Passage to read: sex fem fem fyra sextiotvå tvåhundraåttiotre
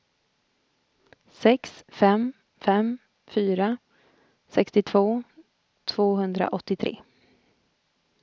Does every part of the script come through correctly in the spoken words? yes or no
yes